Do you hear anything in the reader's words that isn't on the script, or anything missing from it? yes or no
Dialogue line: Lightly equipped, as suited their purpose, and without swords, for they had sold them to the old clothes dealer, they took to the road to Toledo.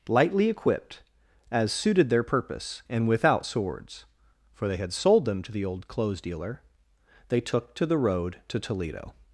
no